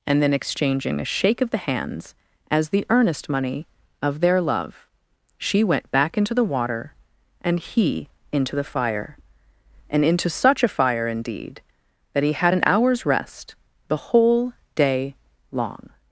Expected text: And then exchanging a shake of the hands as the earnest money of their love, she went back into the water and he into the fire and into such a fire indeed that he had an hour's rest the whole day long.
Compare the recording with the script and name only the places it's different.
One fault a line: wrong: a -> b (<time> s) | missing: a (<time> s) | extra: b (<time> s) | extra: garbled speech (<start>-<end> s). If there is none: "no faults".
no faults